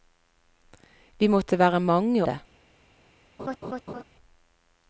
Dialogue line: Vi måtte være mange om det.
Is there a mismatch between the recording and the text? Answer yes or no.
yes